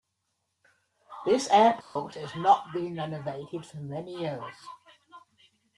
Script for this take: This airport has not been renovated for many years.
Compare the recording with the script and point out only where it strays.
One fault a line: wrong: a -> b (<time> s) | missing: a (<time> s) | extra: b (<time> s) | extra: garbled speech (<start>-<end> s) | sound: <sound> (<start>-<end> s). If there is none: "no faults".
sound: dropout (1.8-2.0 s)